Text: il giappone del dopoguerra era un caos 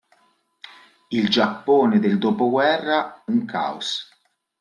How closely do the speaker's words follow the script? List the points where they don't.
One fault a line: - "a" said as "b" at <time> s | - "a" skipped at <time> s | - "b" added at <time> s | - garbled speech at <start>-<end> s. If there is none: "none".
- "era" skipped at 3.2 s